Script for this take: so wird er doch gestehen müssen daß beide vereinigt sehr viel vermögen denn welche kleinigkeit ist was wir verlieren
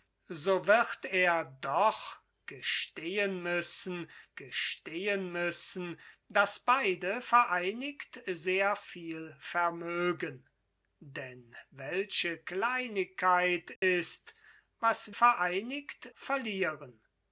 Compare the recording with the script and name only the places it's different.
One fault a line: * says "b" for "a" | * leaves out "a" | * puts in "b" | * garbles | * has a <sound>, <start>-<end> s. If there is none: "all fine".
* puts in "gestehen müssen"
* has a dropout, 13.8-13.8 s
* says "vereinigt" for "wir"